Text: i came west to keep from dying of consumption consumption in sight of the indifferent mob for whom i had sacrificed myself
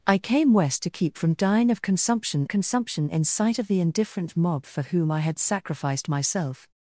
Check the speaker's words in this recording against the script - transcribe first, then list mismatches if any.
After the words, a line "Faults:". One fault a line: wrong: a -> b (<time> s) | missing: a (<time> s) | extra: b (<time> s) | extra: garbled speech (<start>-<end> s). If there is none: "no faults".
i came west to keep from dying of consumption consumption in sight of the indifferent mob for whom i had sacrificed myself
Faults:
no faults